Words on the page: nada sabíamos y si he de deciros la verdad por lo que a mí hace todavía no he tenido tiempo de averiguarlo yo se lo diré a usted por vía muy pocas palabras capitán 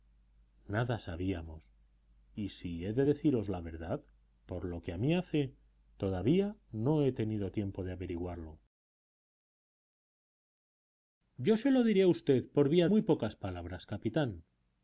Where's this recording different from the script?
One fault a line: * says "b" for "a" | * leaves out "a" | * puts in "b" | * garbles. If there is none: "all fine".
all fine